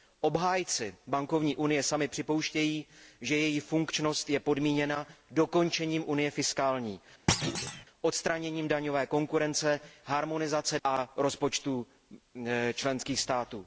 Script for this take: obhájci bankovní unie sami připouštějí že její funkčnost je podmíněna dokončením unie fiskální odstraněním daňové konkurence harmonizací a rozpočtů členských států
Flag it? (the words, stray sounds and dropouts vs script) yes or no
yes